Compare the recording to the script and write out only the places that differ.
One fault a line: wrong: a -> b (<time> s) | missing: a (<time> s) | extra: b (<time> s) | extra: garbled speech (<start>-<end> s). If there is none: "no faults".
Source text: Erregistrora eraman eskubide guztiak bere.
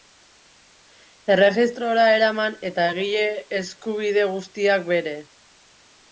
extra: eta egile (2.7 s)